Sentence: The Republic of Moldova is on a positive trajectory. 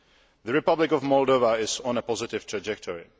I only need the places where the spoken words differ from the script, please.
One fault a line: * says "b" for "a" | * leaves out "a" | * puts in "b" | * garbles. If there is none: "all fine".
all fine